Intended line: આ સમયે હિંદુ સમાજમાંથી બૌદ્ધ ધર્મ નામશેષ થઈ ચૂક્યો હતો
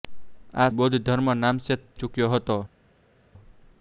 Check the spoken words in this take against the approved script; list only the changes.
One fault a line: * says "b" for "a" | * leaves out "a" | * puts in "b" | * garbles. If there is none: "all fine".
* leaves out "સમયે હિંદુ સમાજમાંથી"
* leaves out "થઈ"